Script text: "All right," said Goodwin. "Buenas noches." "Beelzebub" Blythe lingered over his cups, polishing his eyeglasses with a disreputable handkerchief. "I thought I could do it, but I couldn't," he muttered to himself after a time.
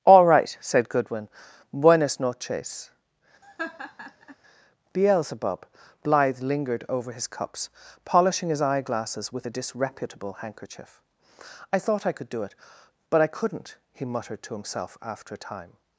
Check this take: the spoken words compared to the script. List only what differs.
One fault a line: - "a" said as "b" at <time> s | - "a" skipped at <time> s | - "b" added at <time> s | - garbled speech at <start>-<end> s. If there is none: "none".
none